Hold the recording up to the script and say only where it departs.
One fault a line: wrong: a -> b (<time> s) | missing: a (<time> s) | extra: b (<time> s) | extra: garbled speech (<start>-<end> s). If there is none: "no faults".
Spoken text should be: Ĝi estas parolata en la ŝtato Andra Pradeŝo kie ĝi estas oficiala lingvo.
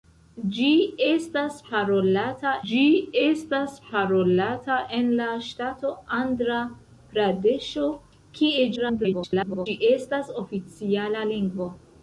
extra: ĝi estas parolata (2.7 s)
extra: garbled speech (8.8-9.7 s)